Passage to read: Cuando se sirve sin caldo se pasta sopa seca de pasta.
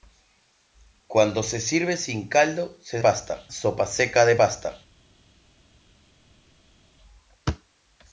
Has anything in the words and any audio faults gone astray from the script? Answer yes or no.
no